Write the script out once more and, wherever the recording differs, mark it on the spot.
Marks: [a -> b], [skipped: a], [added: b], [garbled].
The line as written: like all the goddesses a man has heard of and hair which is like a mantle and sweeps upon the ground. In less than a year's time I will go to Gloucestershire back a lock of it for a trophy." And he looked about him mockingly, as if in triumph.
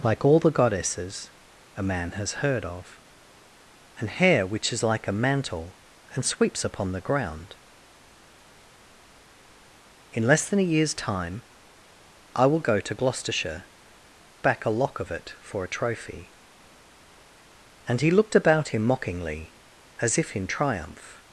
like all the goddesses a man has heard of and hair which is like a mantle and sweeps upon the ground. In less than a year's time I will go to Gloucestershire back a lock of it for a trophy." And he looked about him mockingly, as if in triumph.